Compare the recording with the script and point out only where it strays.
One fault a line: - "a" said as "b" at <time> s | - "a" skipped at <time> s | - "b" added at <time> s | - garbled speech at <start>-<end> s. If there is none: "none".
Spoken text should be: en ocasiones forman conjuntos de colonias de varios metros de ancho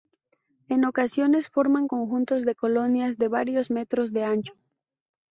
none